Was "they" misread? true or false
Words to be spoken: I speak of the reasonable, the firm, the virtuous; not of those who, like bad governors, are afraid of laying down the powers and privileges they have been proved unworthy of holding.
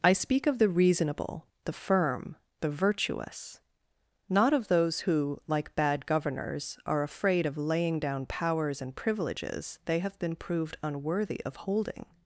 false